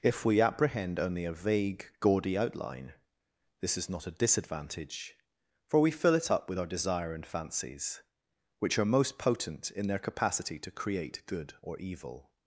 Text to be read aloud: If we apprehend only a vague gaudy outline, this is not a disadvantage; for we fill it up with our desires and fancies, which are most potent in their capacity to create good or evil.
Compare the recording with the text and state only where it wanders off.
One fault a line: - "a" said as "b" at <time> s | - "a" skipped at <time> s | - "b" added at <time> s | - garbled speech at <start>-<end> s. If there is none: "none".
- "desires" said as "desire" at 6.7 s